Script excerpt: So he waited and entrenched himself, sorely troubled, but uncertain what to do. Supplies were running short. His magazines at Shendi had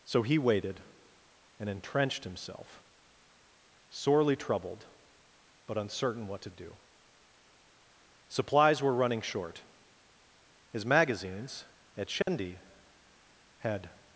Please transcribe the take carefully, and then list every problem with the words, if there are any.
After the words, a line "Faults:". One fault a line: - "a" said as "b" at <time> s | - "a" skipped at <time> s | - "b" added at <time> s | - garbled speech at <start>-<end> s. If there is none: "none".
So he waited and entrenched himself, sorely troubled, but uncertain what to do. Supplies were running short. His magazines at Shendi had
Faults:
none